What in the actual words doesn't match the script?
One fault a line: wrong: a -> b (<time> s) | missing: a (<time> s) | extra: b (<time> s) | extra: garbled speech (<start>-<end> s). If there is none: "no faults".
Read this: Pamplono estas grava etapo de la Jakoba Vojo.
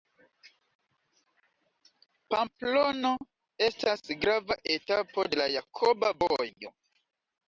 no faults